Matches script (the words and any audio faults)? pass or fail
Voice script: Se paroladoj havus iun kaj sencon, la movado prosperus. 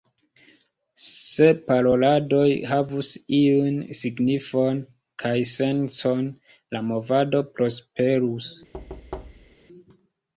fail